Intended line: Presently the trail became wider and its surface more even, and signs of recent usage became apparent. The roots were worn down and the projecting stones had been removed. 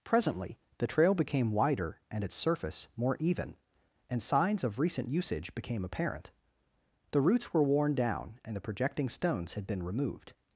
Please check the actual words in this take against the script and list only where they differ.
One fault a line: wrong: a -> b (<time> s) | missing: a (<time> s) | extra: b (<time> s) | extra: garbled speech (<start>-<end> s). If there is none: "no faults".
no faults